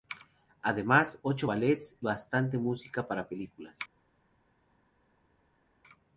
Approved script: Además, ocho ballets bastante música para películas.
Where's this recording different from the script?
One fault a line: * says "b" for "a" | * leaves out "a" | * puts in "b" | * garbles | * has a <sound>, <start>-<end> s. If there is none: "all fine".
all fine